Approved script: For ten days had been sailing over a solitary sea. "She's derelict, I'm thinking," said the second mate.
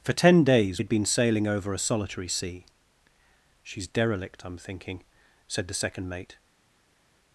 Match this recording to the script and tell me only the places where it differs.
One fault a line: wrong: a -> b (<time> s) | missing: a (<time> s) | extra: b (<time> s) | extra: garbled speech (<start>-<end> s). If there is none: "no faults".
no faults